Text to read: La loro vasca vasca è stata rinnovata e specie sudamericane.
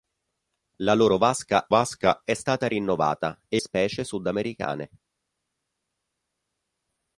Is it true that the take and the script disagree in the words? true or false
false